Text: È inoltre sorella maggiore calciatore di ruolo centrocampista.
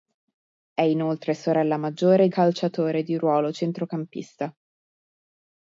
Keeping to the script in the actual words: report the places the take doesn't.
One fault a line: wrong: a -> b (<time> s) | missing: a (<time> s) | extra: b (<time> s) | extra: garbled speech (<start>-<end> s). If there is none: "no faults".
no faults